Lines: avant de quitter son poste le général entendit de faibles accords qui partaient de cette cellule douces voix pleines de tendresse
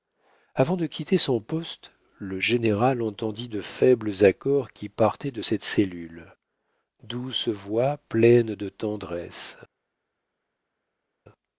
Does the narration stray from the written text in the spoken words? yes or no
no